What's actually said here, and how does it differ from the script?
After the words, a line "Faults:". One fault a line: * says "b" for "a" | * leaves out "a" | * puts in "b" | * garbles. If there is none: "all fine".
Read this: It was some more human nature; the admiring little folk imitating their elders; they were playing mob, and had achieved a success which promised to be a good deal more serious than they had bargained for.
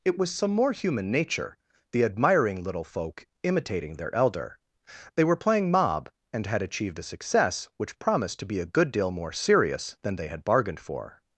It was some more human nature; the admiring little folk imitating their elder; they were playing mob, and had achieved a success which promised to be a good deal more serious than they had bargained for.
Faults:
* says "elder" for "elders"